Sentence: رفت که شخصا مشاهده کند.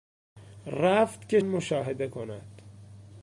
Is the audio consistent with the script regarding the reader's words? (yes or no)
no